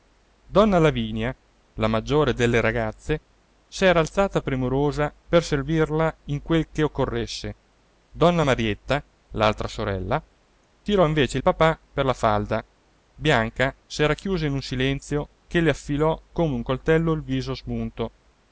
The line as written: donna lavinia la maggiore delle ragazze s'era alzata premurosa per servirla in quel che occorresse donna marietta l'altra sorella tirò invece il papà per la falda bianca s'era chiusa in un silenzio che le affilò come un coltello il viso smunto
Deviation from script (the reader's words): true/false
false